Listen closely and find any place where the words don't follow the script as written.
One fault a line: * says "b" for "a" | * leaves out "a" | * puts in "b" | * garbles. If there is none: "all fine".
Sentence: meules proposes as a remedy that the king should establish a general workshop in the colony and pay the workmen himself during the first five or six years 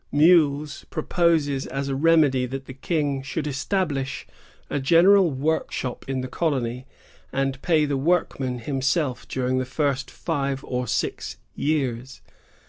all fine